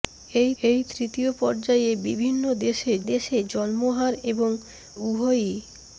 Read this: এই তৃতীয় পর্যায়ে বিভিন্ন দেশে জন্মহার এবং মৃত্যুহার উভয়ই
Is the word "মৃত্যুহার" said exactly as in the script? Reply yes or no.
no